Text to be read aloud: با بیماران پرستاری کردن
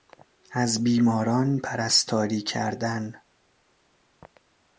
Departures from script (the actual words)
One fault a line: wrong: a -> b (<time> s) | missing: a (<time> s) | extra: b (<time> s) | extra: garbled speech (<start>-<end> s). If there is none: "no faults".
wrong: با -> از (0.5 s)